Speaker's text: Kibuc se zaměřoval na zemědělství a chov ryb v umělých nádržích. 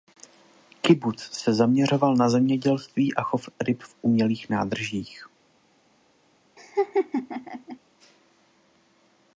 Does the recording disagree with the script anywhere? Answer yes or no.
no